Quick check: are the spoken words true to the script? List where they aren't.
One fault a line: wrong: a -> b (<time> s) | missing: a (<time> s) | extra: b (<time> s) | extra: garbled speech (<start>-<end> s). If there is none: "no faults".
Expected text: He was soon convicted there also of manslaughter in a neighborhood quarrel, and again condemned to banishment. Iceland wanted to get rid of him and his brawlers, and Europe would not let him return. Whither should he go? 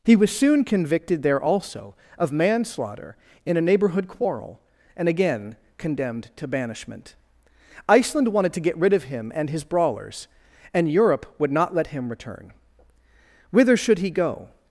no faults